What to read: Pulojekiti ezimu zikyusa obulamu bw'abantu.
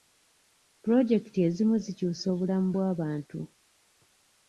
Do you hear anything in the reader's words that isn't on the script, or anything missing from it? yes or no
no